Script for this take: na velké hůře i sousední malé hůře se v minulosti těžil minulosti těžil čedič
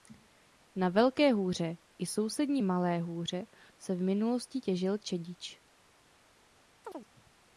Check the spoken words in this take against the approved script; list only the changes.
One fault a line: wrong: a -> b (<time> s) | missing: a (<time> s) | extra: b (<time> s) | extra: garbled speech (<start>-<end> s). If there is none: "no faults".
missing: minulosti těžil (5.0 s)